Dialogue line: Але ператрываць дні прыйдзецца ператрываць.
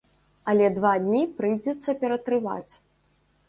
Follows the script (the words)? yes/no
no